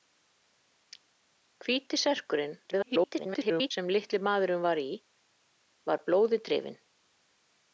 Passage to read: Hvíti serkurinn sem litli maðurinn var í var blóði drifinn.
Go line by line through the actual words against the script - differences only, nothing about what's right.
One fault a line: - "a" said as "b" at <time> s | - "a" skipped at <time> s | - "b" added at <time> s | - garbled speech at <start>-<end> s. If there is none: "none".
- garbled speech at 2.7-3.7 s